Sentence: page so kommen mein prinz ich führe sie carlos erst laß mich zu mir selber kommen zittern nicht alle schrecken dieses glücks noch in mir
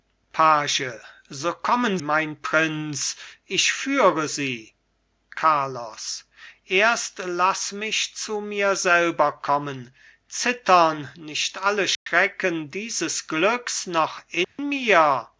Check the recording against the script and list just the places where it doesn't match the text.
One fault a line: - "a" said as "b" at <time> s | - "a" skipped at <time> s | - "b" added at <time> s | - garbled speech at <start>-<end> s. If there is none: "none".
none